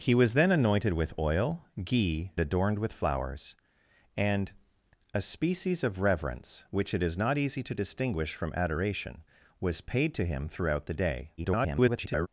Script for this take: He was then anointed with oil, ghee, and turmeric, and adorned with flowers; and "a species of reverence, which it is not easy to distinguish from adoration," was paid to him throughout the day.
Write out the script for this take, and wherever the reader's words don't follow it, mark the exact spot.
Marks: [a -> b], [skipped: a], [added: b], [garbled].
He was then anointed with oil, ghee, [skipped: and turmeric, and] adorned with flowers; and "a species of reverence, which it is not easy to distinguish from adoration," was paid to him throughout the day. [garbled]